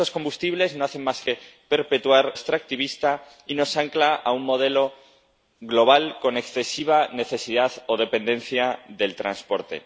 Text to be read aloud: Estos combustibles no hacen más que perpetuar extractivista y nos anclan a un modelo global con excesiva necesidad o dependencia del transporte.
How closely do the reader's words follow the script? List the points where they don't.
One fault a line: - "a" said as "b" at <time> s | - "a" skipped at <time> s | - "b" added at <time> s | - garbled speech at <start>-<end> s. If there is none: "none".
none